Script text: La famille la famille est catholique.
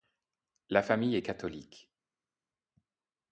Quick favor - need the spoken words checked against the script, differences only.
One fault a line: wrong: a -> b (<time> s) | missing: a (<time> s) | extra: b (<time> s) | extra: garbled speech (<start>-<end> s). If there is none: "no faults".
missing: la famille (1.2 s)